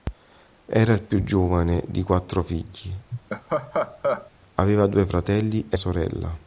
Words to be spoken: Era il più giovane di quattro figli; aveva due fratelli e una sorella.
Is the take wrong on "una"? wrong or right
wrong